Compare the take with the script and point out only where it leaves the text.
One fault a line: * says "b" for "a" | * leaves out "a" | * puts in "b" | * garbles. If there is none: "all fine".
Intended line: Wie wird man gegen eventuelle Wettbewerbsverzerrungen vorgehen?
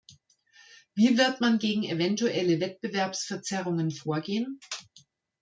all fine